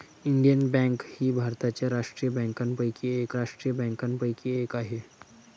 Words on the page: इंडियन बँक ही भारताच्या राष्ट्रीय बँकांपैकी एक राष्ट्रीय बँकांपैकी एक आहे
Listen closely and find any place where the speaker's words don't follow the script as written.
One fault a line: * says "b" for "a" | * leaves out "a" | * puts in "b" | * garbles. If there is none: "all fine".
all fine